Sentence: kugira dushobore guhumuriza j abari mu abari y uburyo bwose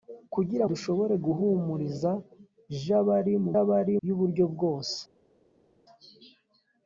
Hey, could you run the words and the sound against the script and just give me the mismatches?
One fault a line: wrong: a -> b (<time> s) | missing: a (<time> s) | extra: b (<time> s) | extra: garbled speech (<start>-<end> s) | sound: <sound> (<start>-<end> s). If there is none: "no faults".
no faults